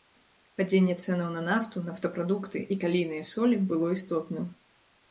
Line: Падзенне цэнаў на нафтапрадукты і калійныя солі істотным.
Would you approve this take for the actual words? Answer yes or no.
no